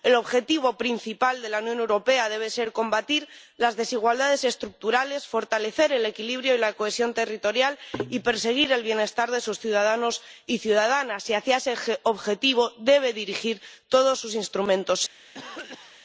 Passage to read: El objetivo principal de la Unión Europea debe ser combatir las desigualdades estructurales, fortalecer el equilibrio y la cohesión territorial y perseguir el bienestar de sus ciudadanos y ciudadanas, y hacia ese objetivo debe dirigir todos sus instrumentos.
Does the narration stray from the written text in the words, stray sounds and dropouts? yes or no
yes